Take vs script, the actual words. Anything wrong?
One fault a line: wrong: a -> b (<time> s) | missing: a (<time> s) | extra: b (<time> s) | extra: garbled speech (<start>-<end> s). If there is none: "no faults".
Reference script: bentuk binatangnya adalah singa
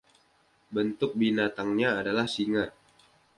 no faults